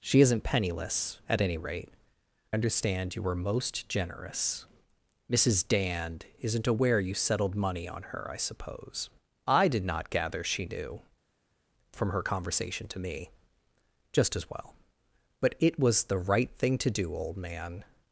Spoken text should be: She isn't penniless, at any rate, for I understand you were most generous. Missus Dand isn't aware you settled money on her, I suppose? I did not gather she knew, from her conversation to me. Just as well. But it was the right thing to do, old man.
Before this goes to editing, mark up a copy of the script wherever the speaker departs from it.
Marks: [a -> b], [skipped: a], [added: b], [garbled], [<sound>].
She isn't penniless, at any rate, [skipped: for I] understand you were most generous. Missus Dand isn't aware you settled money on her, I suppose? I did not gather she knew, from her conversation to me. Just as well. But it was the right thing to do, old man.